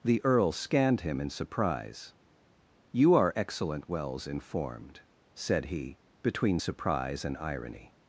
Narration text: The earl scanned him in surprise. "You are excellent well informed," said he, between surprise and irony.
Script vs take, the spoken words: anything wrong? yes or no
yes